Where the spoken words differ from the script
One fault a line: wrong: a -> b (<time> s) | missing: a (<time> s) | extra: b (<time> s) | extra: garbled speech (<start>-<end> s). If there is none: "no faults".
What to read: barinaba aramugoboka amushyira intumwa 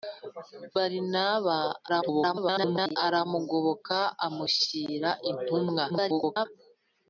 extra: garbled speech (1.9-3.0 s)
extra: garbled speech (5.9-6.5 s)